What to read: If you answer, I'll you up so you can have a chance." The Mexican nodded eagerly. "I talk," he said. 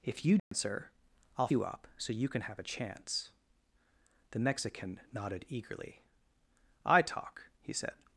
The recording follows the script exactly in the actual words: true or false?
true